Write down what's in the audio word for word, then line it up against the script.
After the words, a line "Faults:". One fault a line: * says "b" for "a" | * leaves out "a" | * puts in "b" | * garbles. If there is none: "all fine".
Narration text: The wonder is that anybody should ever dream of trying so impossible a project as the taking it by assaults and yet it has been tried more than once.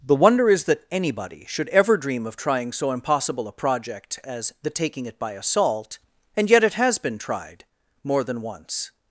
The wonder is that anybody should ever dream of trying so impossible a project as the taking it by assault and yet it has been tried more than once.
Faults:
* says "assault" for "assaults"